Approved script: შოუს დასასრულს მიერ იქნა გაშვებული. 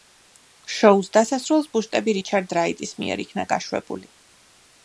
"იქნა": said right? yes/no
yes